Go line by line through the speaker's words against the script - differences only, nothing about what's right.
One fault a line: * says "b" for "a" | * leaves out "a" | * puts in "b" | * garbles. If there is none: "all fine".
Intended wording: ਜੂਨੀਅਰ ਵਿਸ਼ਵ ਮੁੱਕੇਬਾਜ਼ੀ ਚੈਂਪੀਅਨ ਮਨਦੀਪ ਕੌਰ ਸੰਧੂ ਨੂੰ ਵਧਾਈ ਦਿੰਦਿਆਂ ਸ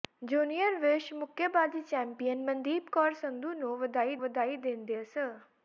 * puts in "ਵਧਾਈ"